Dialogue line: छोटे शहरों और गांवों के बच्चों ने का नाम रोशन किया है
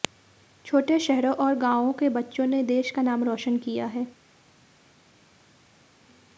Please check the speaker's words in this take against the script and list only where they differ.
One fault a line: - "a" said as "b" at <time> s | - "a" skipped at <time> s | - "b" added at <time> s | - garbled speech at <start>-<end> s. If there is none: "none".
- "देश" added at 2.6 s